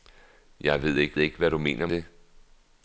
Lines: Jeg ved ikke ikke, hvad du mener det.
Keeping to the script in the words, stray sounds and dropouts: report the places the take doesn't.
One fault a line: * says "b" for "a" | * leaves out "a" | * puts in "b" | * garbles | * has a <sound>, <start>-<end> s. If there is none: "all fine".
all fine